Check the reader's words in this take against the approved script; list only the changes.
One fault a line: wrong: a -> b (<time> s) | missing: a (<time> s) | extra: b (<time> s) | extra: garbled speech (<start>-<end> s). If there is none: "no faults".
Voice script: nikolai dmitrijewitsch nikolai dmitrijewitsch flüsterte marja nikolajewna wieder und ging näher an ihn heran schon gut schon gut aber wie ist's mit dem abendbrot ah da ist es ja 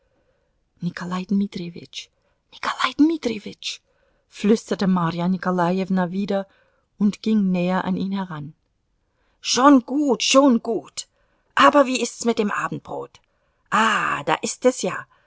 no faults